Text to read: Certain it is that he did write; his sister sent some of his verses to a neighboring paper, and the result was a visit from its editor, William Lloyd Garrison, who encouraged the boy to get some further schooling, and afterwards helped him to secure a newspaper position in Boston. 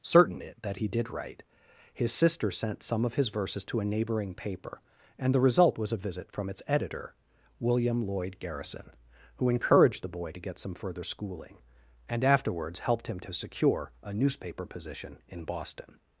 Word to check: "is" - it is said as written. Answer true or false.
false